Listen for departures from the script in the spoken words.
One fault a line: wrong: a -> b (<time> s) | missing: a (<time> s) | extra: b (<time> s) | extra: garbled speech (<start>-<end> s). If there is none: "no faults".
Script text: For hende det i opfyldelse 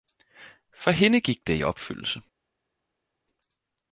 extra: gik (1.2 s)